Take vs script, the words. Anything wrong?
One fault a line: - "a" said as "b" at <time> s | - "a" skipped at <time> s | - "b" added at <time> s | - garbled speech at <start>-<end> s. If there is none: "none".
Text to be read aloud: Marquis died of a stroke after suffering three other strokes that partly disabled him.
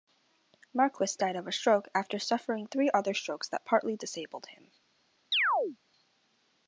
none